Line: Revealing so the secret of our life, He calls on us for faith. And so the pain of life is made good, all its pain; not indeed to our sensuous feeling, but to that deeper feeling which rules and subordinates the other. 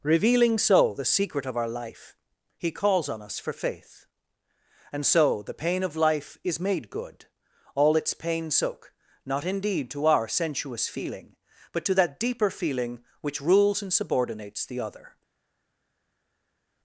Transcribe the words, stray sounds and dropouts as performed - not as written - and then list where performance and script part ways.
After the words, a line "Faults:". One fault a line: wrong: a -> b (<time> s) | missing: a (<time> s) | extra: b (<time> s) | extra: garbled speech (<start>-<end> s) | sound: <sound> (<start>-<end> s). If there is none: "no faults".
Revealing so the secret of our life, He calls on us for faith. And so the pain of life is made good, all its pain; soak not indeed to our sensuous feeling, but to that deeper feeling which rules and subordinates the other.
Faults:
extra: soak (8.5 s)